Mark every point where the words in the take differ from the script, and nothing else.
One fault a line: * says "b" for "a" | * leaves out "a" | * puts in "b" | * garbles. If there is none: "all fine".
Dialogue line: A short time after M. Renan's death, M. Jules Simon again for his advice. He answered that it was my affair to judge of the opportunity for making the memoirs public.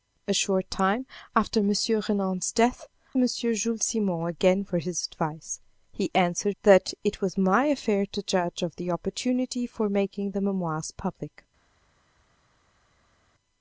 all fine